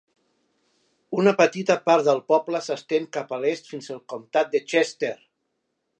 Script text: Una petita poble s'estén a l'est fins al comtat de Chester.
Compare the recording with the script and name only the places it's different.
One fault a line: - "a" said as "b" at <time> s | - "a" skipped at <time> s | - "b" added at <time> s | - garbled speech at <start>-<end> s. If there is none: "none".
- "part del" added at 1.9 s
- "cap" added at 3.2 s